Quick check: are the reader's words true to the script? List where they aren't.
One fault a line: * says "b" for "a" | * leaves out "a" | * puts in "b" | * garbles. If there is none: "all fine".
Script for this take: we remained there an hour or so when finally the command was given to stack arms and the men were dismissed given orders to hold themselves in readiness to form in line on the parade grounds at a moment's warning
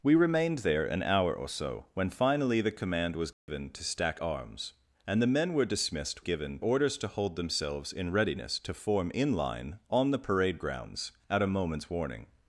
all fine